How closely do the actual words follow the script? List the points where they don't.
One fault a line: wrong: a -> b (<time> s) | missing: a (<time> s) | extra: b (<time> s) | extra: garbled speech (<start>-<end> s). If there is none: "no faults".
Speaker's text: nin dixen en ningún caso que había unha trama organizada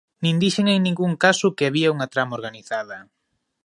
no faults